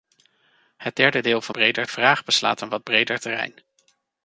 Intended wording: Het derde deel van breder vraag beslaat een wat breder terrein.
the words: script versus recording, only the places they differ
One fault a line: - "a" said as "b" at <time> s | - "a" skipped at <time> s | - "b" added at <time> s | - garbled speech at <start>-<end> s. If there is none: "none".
none